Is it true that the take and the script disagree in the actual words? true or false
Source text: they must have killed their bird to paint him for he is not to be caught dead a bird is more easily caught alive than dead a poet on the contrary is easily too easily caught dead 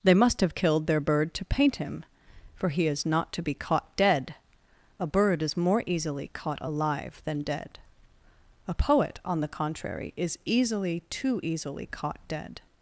false